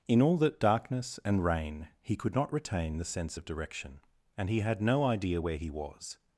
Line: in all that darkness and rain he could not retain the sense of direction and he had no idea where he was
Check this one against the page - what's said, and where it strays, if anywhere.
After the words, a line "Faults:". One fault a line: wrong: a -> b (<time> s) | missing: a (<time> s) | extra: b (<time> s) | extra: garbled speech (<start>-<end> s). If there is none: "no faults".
in all that darkness and rain he could not retain the sense of direction and he had no idea where he was
Faults:
no faults